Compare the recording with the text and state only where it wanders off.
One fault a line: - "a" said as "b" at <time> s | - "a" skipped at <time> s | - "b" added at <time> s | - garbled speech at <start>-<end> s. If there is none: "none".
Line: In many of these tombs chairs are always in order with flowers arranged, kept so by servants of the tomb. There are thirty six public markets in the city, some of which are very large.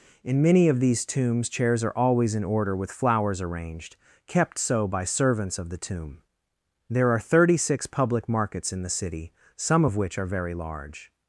none